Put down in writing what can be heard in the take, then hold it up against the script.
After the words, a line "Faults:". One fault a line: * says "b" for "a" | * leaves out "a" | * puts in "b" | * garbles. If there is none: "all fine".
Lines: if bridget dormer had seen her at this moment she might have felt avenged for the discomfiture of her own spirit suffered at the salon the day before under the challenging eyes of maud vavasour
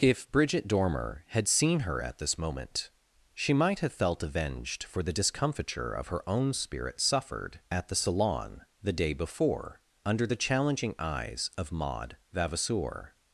if bridget dormer had seen her at this moment she might have felt avenged for the discomfiture of her own spirit suffered at the salon the day before under the challenging eyes of maud vavasour
Faults:
all fine